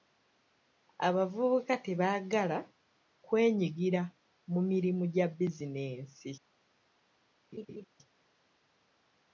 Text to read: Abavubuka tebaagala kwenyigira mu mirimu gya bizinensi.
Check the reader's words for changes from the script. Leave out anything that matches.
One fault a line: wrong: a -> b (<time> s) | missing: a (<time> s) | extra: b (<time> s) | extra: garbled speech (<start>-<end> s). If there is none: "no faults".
no faults